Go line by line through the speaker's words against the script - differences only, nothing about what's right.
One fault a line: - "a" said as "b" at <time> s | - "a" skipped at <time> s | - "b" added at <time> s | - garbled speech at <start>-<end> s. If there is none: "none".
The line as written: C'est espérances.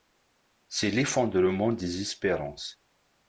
- "l'effondrement des" added at 0.9 s